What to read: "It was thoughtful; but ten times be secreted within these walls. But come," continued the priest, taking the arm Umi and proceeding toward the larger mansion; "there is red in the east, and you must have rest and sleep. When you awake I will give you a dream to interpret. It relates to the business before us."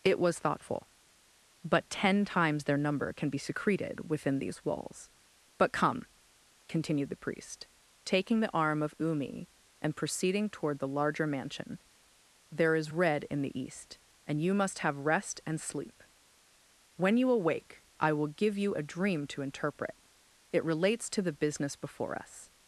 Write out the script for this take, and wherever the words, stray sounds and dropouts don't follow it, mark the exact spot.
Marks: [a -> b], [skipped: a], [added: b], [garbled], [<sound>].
"It was thoughtful; but ten times [added: their number can] be secreted within these walls. But come," continued the priest, taking the arm [added: of] Umi and proceeding toward the larger mansion; "there is red in the east, and you must have rest and sleep. When you awake I will give you a dream to interpret. It relates to the business before us."